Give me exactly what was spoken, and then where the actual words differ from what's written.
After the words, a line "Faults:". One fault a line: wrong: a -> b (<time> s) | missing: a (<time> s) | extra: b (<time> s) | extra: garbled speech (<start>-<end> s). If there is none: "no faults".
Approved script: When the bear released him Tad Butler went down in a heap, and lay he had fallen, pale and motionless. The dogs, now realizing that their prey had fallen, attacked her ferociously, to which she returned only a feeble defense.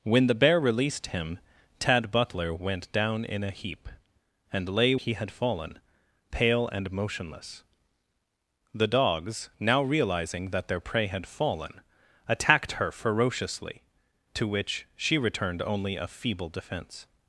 When the bear released him Tad Butler went down in a heap, and lay he had fallen, pale and motionless. The dogs, now realizing that their prey had fallen, attacked her ferociously, to which she returned only a feeble defense.
Faults:
no faults